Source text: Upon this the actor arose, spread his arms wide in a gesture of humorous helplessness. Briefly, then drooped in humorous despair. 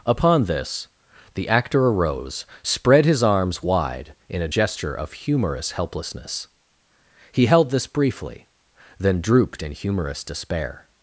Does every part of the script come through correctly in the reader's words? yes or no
no